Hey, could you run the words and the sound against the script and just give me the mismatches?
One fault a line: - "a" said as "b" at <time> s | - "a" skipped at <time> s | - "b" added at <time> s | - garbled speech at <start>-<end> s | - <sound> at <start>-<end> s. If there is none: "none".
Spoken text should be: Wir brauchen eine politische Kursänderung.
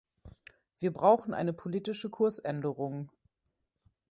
none